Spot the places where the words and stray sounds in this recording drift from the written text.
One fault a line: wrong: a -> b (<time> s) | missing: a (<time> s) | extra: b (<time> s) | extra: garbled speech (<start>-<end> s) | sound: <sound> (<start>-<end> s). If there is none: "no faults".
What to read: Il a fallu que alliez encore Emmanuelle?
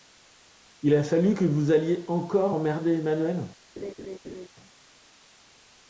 extra: vous (1.4 s)
extra: emmerder (2.5 s)
sound: laugh (3.8-4.5 s)